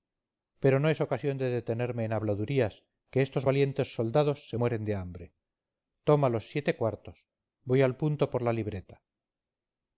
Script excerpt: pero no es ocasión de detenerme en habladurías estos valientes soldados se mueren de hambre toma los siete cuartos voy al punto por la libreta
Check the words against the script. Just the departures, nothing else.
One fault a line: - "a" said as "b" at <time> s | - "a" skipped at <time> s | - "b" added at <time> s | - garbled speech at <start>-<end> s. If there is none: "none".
- "que" added at 3.1 s